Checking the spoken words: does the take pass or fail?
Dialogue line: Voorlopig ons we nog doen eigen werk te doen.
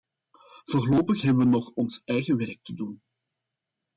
fail